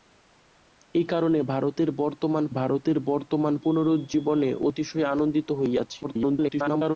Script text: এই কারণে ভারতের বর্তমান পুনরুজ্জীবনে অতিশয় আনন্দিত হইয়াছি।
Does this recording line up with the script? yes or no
no